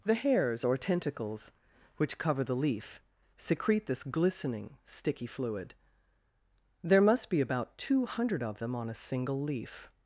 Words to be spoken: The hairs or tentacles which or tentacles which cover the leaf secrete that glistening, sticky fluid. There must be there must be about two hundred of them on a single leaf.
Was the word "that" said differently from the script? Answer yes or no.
yes